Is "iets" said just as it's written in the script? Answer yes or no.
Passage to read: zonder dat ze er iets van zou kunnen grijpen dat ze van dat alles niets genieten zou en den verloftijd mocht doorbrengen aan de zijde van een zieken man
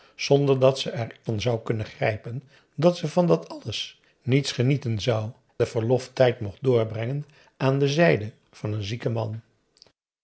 no